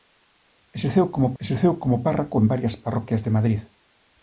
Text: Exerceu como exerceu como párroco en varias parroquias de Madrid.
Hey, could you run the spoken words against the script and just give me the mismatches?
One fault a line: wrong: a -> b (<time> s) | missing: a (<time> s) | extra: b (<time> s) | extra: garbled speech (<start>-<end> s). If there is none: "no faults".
no faults